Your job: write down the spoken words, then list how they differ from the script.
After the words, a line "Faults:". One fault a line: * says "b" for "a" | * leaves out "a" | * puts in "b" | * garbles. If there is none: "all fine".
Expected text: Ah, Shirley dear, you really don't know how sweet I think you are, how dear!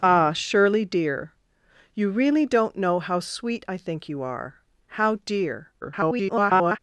Ah, Shirley dear, you really don't know how sweet I think you are, how dear! [garbled]
Faults:
* garbles